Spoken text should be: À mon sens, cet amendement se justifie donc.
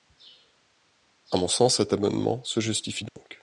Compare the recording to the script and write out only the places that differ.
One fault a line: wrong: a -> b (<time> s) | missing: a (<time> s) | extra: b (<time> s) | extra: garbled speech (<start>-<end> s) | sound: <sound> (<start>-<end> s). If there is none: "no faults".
sound: dropout (3.1-3.2 s)